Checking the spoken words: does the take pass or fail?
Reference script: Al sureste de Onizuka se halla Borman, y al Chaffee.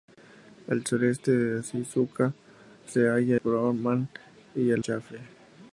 pass